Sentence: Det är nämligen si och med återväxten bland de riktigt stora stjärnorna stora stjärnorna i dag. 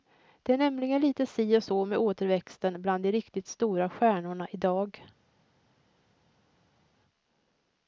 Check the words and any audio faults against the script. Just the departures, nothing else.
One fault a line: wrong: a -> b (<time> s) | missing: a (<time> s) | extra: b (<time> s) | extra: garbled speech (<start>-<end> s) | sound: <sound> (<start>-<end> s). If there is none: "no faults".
extra: lite (1.0 s)
extra: så (1.6 s)
missing: stora stjärnorna (4.5 s)